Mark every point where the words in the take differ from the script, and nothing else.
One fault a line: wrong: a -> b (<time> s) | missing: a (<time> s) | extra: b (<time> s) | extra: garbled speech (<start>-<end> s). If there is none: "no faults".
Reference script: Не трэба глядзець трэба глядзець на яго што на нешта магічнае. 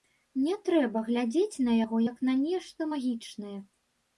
missing: трэба глядзець (1.6 s)
wrong: што -> як (2.1 s)